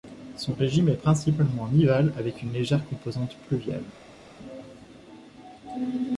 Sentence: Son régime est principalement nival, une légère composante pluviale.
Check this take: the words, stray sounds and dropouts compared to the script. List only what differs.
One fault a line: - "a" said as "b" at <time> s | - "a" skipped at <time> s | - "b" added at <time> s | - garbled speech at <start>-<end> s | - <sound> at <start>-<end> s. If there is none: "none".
- "avec" added at 2.2 s